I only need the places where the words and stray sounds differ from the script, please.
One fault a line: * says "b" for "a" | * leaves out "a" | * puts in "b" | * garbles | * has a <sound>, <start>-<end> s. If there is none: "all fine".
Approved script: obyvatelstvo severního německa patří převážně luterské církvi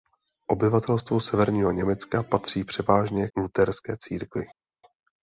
all fine